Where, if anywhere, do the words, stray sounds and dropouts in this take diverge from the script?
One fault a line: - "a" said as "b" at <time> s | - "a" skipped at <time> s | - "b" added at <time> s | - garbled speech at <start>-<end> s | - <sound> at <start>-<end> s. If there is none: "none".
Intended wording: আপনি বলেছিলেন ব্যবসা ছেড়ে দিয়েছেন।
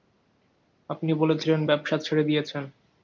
none